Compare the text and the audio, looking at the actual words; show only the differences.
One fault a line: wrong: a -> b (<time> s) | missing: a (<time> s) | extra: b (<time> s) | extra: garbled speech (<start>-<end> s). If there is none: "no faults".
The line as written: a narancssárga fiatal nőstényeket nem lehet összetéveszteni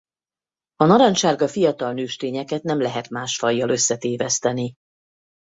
extra: más fajjal (3.1 s)